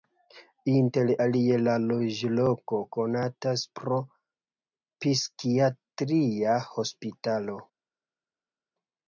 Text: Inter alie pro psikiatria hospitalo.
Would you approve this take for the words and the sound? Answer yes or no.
no